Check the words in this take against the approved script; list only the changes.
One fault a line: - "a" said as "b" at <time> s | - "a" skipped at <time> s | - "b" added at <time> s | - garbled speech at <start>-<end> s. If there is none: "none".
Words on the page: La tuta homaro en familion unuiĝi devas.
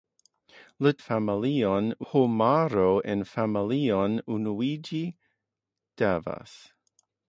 - "tuta" said as "familion" at 1.0 s